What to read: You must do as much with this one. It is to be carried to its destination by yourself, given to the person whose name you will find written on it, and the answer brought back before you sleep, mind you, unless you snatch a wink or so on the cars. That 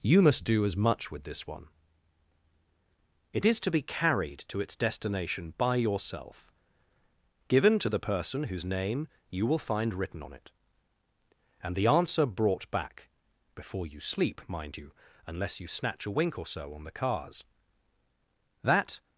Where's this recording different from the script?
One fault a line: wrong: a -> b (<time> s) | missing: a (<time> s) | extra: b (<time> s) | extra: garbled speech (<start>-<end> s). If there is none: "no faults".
no faults